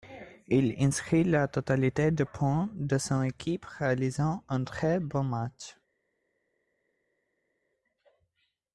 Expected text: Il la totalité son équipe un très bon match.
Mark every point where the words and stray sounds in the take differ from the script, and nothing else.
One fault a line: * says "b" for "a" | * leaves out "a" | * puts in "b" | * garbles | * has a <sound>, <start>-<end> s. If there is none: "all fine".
* puts in "inscrit"
* puts in "des points de"
* puts in "réalisant"